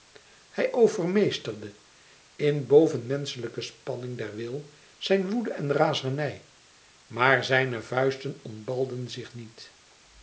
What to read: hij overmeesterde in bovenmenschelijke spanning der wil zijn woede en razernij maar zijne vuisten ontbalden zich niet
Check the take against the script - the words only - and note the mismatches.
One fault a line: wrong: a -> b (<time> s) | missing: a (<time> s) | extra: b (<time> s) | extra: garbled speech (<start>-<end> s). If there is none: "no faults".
no faults